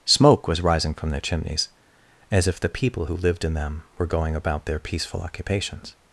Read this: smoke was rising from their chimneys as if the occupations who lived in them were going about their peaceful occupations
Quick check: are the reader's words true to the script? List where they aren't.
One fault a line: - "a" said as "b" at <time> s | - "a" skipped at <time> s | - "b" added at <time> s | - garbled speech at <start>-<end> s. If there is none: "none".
- "occupations" said as "people" at 2.7 s